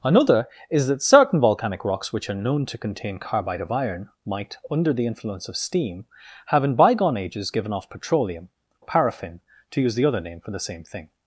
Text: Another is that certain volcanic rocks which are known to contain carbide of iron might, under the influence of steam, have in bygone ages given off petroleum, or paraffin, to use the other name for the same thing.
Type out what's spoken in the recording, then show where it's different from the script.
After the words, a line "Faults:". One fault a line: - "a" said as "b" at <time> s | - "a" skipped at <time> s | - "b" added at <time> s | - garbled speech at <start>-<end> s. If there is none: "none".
Another is that certain volcanic rocks which are known to contain carbide of iron might, under the influence of steam, have in bygone ages given off petroleum, paraffin, to use the other name for the same thing.
Faults:
- "or" skipped at 8.5 s